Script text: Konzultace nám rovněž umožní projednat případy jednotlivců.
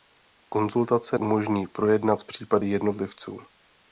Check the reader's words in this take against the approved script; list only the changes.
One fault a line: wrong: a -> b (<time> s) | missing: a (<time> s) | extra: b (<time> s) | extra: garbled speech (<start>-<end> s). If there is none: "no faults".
missing: nám rovněž (1.2 s)